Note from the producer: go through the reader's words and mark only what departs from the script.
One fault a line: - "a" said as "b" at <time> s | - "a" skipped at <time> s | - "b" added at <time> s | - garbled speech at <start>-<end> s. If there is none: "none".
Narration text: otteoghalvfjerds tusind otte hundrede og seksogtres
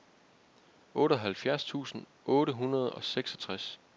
none